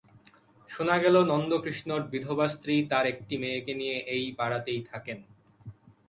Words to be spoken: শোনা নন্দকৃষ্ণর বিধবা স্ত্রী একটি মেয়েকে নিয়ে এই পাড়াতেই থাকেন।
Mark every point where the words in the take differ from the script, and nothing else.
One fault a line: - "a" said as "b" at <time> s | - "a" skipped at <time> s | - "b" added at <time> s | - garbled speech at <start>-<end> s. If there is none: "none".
- "গেল" added at 1.0 s
- "তাঁর" added at 2.9 s